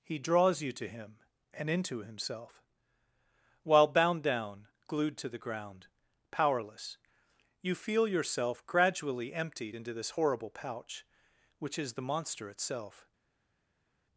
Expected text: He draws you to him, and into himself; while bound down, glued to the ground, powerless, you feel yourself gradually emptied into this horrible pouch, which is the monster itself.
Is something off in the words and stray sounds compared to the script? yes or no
no